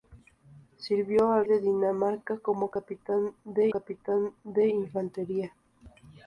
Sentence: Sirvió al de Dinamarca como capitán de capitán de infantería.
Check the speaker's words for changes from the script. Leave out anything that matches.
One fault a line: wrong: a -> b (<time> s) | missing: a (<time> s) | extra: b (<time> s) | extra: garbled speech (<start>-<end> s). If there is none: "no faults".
no faults